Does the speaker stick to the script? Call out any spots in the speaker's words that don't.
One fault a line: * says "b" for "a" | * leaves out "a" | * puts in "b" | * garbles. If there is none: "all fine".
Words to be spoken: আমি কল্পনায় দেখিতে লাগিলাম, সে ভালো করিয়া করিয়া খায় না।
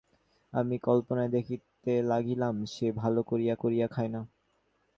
all fine